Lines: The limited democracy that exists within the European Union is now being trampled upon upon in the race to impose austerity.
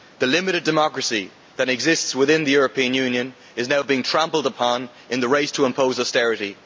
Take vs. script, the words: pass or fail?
fail